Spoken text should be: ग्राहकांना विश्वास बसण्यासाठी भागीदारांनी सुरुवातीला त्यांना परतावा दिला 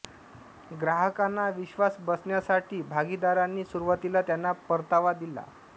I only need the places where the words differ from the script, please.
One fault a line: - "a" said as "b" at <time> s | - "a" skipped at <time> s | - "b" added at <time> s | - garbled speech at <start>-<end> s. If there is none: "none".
none